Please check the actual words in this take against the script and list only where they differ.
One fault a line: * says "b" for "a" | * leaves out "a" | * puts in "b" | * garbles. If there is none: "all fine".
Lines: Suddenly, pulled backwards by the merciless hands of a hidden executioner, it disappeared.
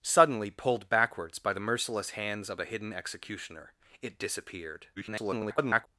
* garbles